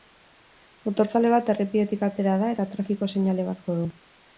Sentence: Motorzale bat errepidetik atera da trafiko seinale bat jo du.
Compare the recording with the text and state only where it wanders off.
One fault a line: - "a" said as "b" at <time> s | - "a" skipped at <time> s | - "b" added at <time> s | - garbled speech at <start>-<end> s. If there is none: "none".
- "eta" added at 2.6 s